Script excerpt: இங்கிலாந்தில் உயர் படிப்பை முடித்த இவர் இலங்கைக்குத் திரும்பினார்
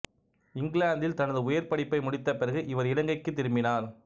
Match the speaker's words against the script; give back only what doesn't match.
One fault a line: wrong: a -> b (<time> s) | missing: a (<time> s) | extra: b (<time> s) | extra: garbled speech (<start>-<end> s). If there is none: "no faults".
extra: தனது (1.1 s)
extra: பிறகு (2.4 s)